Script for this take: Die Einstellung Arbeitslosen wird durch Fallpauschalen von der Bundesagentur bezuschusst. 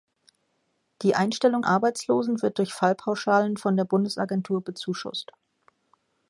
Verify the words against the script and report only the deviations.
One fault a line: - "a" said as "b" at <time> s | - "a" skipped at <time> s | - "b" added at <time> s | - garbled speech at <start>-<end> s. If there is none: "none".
none